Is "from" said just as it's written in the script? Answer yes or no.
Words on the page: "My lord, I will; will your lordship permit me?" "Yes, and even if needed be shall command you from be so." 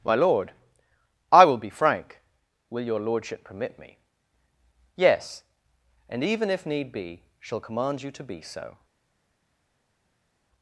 no